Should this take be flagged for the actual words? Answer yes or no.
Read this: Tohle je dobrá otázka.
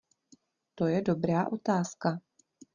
yes